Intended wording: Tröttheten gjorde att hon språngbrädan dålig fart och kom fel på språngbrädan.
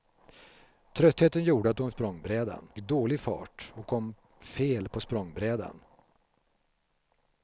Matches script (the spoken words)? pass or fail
pass